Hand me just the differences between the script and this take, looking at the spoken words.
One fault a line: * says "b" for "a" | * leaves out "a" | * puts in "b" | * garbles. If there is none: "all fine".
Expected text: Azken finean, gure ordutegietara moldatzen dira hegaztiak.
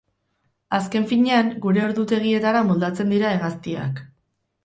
all fine